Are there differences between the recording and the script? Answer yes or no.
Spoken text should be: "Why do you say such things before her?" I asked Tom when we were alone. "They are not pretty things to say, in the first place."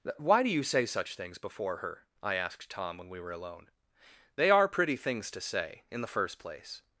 yes